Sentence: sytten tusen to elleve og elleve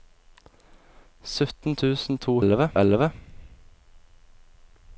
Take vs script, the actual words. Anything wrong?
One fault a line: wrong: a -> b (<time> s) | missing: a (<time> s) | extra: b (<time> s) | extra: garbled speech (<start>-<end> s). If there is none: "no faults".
no faults